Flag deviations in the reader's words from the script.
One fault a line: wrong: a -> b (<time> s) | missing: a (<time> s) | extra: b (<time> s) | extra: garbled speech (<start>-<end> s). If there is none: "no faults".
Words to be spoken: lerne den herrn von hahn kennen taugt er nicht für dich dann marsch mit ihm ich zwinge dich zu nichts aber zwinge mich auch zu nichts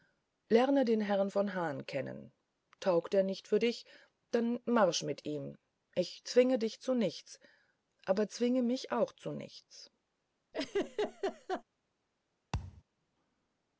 no faults